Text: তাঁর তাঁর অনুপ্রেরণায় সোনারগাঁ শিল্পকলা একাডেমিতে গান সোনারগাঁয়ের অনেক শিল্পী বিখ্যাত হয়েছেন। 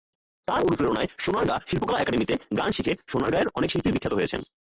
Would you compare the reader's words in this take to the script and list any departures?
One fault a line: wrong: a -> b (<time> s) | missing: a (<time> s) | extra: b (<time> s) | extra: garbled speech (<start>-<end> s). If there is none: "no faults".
missing: তাঁর (0.6 s)
extra: শিখে (2.7 s)